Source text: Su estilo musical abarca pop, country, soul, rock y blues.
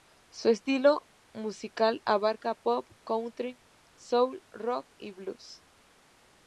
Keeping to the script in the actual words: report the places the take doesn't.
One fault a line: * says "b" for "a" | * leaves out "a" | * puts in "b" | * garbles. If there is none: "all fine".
all fine